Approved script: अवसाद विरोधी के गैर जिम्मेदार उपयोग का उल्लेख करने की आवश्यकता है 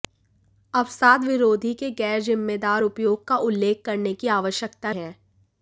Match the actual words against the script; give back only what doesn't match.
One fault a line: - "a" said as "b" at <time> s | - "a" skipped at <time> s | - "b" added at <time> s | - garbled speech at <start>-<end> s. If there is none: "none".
none